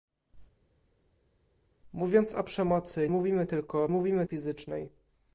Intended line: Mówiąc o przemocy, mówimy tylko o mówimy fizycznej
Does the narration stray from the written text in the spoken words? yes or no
no